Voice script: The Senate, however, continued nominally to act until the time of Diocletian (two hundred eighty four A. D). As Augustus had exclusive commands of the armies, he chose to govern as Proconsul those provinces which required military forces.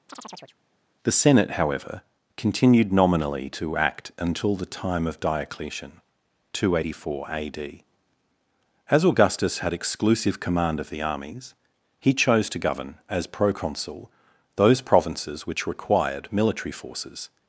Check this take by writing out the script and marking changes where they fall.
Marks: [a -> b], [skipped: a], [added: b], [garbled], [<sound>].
[chirp] The Senate, however, continued nominally to act until the time of Diocletian (two hundred eighty four A. D). As Augustus had exclusive [commands -> command] of the armies, he chose to govern as Proconsul those provinces which required military forces.